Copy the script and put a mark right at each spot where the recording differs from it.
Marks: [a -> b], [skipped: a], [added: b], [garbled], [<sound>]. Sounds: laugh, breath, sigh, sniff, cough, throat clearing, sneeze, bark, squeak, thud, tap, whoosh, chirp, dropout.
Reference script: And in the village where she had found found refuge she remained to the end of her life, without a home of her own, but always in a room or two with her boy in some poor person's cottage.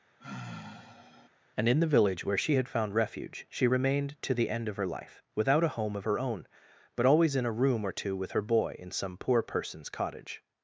[sigh] And in the village where she had found [skipped: found] refuge she remained to the end of her life, without a home of her own, but always in a room or two with her boy in some poor person's cottage.